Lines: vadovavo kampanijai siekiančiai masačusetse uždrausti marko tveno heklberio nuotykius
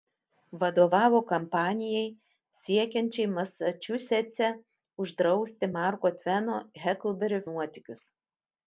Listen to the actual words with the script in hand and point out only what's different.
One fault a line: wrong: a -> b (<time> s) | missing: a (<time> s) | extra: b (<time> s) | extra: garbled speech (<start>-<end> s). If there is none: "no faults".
no faults